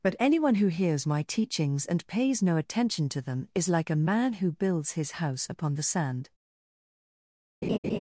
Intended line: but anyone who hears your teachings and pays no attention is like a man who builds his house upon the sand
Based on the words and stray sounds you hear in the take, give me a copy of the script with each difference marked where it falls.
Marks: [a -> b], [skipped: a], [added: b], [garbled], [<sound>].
but anyone who hears [your -> my] teachings and pays no attention [added: to them] is like a man who builds his house upon the sand [laugh]